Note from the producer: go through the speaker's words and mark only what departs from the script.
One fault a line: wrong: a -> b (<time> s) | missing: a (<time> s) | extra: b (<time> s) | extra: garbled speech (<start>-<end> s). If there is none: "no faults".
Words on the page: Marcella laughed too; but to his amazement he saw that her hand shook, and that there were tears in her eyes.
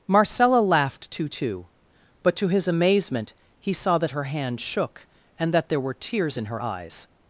extra: too (1.3 s)